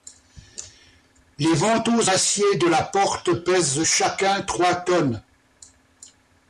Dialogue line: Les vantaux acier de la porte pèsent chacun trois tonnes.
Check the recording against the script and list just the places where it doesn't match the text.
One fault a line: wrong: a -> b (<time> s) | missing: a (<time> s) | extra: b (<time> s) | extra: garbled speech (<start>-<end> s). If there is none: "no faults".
no faults